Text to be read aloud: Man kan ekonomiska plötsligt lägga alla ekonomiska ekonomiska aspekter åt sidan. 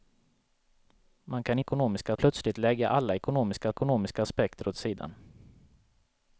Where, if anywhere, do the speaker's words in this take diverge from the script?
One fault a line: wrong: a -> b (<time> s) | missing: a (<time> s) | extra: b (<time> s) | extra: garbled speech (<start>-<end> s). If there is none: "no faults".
no faults